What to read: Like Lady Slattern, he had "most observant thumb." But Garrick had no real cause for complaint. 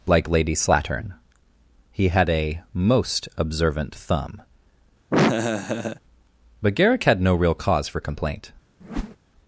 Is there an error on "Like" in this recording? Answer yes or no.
no